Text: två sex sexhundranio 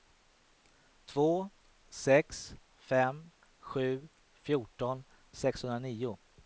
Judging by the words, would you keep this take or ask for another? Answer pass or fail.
fail